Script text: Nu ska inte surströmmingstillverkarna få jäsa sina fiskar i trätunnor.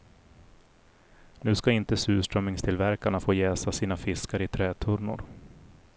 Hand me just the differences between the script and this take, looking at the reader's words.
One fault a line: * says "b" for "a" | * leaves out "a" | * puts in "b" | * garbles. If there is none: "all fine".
all fine